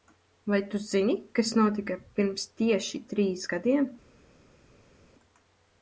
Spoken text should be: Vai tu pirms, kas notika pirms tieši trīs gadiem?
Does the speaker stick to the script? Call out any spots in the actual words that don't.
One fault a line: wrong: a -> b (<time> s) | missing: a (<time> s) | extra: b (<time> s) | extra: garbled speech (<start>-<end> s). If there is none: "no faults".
wrong: pirms -> zini (0.8 s)